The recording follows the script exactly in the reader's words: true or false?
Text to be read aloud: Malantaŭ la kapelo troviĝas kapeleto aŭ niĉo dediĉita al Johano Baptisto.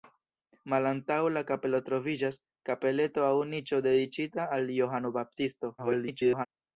false